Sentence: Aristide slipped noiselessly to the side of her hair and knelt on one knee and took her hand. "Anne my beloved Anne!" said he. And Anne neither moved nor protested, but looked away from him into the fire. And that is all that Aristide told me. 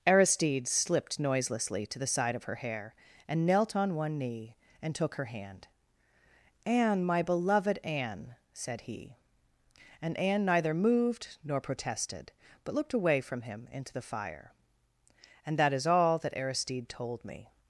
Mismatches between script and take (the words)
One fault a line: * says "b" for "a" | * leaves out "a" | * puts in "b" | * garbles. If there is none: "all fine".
all fine